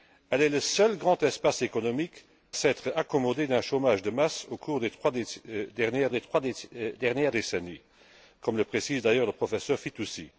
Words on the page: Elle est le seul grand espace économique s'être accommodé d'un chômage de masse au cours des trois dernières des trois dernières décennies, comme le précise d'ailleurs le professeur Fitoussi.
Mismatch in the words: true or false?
false